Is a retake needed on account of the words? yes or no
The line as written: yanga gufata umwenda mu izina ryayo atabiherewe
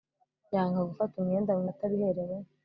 yes